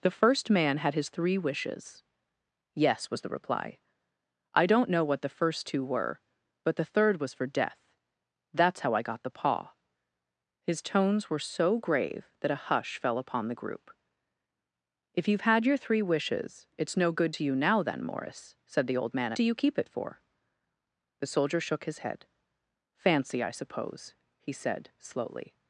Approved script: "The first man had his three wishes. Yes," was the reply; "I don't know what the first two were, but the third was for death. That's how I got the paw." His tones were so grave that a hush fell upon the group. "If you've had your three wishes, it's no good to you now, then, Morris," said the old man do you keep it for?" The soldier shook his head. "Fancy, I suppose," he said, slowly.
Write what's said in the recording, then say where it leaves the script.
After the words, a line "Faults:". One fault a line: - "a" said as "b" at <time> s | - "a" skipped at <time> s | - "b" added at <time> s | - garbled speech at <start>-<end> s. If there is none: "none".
"The first man had his three wishes. Yes," was the reply; "I don't know what the first two were, but the third was for death. That's how I got the paw." His tones were so grave that a hush fell upon the group. "If you've had your three wishes, it's no good to you now, then, Morris," said the old man do you keep it for?" The soldier shook his head. "Fancy, I suppose," he said, slowly.
Faults:
none